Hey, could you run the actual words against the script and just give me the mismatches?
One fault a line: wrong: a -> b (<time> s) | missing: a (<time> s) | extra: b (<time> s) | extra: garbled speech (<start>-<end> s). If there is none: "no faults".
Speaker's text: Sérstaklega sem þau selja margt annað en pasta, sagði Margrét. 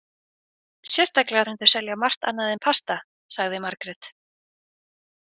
no faults